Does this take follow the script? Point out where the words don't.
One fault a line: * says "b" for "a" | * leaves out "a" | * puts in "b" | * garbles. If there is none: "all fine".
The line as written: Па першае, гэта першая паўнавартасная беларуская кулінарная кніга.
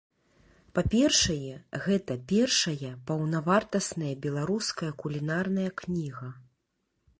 all fine